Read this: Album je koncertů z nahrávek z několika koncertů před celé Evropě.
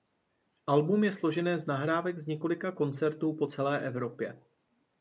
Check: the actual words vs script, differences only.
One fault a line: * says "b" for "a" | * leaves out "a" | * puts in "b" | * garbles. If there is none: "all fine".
* says "složené" for "koncertů"
* says "po" for "před"